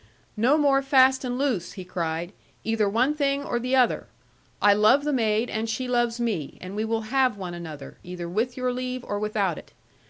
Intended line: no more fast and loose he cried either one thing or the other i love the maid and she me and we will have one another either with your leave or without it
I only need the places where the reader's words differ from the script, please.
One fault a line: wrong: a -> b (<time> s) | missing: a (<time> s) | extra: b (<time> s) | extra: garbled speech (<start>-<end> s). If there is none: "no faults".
extra: loves (5.9 s)